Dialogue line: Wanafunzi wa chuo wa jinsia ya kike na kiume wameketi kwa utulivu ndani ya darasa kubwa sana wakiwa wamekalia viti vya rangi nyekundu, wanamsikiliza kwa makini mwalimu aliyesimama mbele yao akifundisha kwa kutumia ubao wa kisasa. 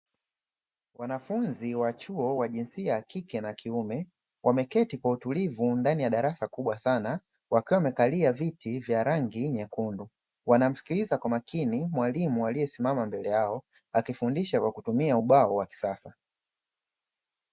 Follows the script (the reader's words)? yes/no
yes